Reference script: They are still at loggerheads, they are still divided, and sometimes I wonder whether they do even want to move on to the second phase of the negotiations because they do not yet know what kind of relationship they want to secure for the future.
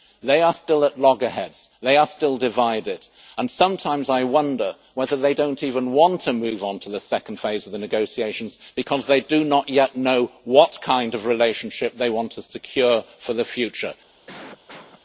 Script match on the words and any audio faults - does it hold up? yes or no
no